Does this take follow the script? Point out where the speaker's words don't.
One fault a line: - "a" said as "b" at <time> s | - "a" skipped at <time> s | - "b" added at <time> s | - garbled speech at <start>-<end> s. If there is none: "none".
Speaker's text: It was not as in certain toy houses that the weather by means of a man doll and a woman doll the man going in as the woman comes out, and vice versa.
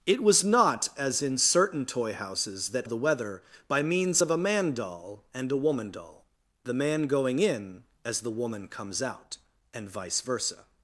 none